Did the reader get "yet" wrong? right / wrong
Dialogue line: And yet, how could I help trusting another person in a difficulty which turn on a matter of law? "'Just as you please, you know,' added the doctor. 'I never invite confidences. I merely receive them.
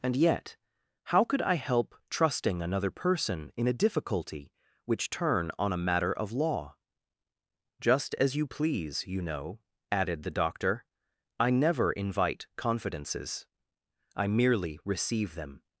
right